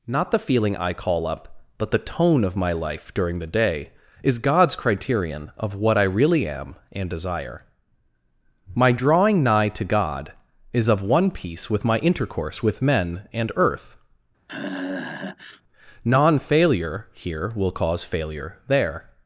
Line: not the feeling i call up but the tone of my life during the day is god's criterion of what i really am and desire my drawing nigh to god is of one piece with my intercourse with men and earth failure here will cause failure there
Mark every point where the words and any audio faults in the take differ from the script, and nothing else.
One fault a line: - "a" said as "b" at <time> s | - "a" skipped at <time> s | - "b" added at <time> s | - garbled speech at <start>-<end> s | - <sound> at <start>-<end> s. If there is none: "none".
- sigh at 14.5-15.6 s
- "non" added at 16.0 s